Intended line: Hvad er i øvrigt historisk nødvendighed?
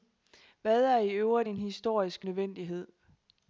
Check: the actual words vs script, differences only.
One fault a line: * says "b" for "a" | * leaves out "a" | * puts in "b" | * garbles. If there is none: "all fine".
* puts in "en"